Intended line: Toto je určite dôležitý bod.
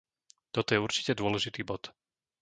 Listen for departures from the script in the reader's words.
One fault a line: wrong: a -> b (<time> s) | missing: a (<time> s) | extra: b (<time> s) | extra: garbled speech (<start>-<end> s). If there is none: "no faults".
no faults